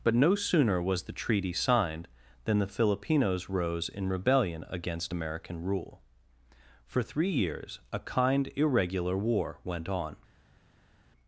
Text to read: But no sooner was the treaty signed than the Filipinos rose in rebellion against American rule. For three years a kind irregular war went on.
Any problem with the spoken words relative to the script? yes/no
no